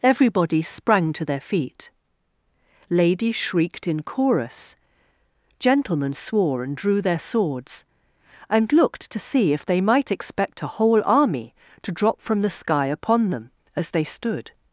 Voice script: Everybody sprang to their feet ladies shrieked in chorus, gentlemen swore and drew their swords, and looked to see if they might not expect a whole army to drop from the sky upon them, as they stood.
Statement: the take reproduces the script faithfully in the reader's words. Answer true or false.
false